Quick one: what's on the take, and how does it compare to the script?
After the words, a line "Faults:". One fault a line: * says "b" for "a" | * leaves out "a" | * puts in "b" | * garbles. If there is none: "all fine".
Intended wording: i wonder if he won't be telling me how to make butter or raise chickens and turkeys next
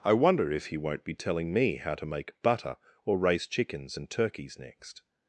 i wonder if he won't be telling me how to make butter or raise chickens and turkeys next
Faults:
all fine